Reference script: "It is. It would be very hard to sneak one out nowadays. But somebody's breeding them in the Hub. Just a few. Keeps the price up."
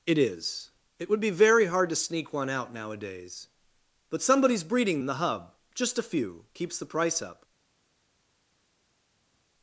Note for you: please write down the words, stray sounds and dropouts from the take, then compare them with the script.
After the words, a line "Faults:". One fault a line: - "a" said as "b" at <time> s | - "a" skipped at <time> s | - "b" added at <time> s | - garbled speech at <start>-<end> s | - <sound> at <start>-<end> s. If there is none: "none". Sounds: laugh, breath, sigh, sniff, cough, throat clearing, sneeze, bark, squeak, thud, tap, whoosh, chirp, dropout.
"It is. It would be very hard to sneak one out nowadays. But somebody's breeding in the Hub. Just a few. Keeps the price up."
Faults:
- "them" skipped at 5.0 s